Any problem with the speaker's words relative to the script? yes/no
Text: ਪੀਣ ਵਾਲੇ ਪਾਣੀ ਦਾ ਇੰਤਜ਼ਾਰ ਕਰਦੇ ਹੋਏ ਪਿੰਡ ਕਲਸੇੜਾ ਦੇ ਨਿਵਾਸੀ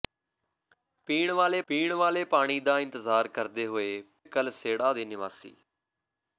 yes